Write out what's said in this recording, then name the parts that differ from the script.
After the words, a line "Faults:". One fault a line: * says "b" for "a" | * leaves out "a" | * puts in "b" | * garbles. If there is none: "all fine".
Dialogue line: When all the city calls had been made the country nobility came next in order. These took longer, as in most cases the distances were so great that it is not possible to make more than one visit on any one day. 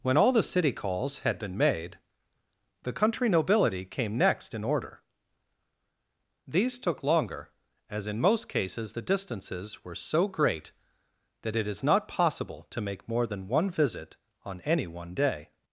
When all the city calls had been made the country nobility came next in order. These took longer, as in most cases the distances were so great that it is not possible to make more than one visit on any one day.
Faults:
all fine